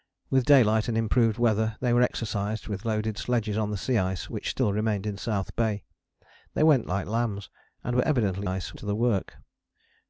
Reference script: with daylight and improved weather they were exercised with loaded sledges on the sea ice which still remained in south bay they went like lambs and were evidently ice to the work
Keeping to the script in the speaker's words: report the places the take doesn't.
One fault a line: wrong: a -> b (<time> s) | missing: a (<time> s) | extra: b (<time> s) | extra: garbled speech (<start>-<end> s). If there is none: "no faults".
no faults